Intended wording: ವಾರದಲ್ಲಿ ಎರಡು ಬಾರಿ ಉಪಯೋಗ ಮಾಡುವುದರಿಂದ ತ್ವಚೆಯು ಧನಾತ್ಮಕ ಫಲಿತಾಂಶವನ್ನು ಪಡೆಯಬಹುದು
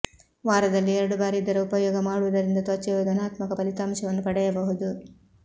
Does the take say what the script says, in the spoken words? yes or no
no